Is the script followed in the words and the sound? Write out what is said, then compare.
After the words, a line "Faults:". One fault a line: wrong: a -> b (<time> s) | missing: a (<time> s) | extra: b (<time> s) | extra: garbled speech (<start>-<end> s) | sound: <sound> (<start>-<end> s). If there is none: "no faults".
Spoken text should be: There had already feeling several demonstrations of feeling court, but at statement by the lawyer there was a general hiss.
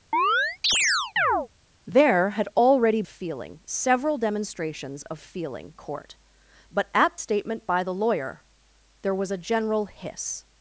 There had already feeling several demonstrations of feeling court, but at statement by the lawyer there was a general hiss.
Faults:
sound: chirp (0.1-1.5 s)